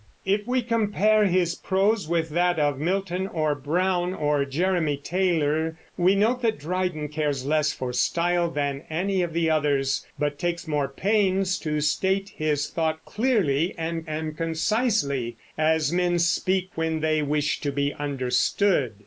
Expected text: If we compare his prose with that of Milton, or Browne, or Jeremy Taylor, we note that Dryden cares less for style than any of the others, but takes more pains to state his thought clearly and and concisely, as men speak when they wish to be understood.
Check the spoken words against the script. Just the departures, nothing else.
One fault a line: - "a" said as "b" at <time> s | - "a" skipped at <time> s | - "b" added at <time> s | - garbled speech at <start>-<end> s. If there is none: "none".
none